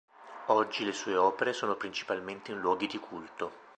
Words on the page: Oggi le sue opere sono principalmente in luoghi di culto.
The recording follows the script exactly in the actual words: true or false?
true